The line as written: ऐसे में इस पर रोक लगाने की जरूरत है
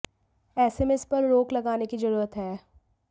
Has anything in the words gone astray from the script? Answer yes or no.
no